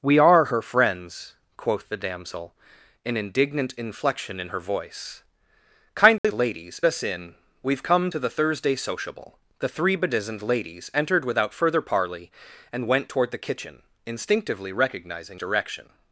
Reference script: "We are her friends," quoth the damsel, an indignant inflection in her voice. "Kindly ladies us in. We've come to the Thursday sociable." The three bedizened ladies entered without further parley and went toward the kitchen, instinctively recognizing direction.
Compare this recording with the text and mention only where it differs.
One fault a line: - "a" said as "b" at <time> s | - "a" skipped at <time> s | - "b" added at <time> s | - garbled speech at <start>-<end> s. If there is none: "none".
none